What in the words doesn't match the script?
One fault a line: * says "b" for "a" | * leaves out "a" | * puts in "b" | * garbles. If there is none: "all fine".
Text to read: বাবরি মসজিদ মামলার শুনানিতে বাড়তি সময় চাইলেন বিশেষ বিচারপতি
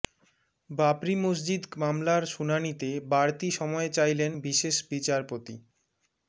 all fine